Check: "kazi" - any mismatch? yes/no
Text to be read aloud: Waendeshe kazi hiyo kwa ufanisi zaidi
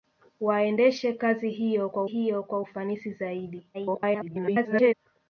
no